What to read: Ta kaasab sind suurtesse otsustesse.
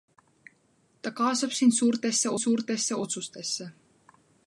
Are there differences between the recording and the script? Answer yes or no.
yes